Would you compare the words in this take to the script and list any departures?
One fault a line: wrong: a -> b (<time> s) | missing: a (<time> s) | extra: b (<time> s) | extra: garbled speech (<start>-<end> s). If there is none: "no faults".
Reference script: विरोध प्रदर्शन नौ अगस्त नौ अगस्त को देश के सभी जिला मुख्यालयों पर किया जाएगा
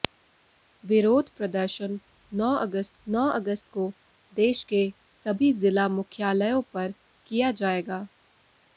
no faults